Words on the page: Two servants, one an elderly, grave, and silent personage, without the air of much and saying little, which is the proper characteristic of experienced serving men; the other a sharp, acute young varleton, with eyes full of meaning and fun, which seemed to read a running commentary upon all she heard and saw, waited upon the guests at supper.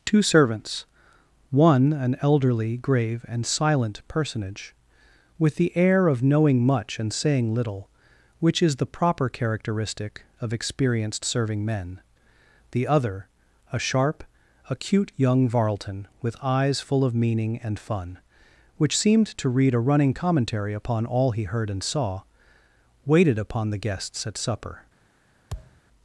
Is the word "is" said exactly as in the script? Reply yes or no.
yes